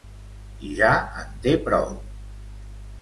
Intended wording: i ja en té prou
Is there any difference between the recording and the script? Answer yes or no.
no